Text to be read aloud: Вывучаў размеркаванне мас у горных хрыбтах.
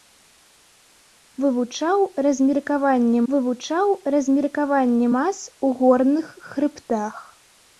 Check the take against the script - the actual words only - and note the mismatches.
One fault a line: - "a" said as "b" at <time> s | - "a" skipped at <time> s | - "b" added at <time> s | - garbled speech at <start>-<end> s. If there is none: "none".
- "вывучаў размеркаванне" added at 3.3 s